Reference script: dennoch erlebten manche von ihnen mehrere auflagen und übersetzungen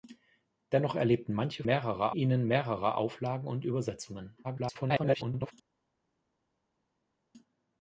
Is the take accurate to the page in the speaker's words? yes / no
no